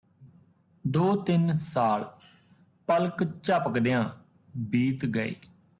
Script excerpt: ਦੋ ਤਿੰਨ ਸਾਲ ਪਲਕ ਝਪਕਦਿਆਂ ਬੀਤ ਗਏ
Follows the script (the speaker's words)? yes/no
yes